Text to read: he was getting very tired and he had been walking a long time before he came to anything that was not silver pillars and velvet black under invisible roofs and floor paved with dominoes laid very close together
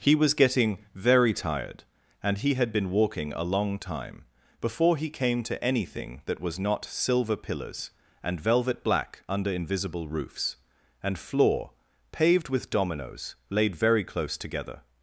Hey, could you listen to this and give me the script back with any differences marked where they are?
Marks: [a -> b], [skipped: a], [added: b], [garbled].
he was getting very tired and he had been walking a long time before he came to anything that was not silver pillars and velvet black under invisible roofs and floor paved with dominoes laid very close together